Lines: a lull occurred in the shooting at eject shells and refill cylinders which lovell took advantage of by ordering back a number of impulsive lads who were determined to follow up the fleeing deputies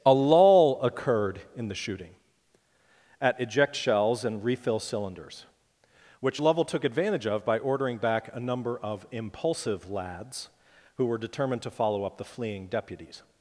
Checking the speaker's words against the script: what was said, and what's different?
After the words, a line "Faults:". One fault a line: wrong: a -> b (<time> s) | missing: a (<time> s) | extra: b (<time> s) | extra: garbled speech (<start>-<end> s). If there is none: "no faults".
a lull occurred in the shooting at eject shells and refill cylinders which lovell took advantage of by ordering back a number of impulsive lads who were determined to follow up the fleeing deputies
Faults:
no faults